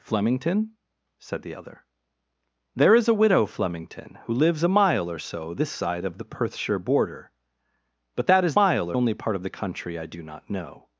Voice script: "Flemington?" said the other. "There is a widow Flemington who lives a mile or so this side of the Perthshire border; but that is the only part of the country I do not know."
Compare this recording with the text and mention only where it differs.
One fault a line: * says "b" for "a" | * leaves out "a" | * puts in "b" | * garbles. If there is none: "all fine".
* says "mile" for "the"